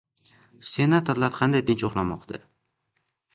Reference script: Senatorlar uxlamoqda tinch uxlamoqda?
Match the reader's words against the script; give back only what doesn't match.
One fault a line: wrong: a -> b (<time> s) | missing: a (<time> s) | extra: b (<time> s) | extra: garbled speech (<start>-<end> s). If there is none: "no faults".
wrong: uxlamoqda -> qanday (1.4 s)